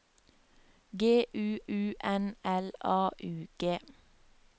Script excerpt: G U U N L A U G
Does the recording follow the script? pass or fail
pass